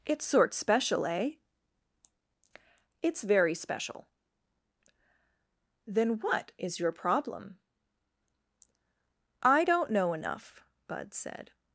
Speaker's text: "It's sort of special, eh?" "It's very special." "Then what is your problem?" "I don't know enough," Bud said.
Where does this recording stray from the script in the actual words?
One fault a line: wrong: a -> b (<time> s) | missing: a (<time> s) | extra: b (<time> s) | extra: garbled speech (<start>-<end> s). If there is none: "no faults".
missing: of (0.5 s)